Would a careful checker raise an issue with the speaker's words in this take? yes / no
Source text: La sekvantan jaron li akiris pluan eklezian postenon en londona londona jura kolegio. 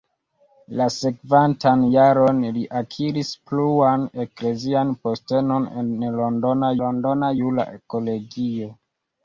no